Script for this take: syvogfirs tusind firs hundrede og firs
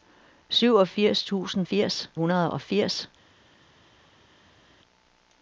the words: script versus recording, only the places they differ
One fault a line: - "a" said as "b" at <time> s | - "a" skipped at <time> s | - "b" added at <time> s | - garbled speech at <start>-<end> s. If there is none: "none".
none